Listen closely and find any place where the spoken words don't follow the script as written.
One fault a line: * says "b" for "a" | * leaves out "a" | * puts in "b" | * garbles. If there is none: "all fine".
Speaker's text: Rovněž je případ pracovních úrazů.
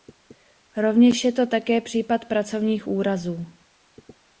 * puts in "to také"